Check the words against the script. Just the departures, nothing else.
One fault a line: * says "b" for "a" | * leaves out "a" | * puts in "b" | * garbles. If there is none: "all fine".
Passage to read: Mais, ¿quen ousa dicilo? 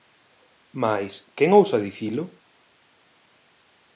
all fine